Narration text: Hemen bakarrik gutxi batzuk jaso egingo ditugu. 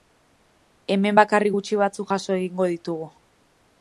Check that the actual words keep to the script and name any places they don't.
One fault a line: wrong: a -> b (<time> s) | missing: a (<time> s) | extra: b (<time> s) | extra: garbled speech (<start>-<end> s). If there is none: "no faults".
no faults